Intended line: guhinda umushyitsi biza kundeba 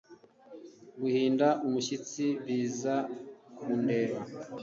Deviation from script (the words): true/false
false